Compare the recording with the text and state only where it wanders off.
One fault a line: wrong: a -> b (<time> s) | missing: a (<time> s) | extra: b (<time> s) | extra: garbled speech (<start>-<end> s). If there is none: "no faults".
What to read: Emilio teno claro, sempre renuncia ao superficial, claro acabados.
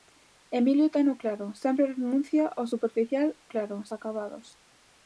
no faults